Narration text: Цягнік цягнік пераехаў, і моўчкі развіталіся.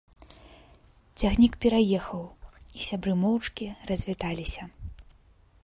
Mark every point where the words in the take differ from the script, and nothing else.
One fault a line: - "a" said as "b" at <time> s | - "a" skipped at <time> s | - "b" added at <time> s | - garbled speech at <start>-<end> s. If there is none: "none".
- "цягнік" skipped at 1.5 s
- "сябры" added at 2.9 s